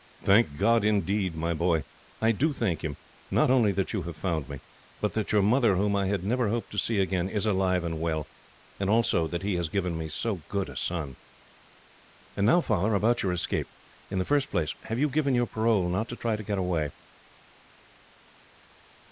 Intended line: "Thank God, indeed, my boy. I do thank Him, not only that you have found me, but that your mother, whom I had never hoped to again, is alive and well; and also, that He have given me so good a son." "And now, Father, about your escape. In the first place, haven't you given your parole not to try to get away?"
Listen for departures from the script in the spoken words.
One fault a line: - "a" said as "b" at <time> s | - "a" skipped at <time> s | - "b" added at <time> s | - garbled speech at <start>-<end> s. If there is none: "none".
- "see" added at 6.8 s
- "have" said as "has" at 9.5 s
- "haven't" said as "have" at 14.8 s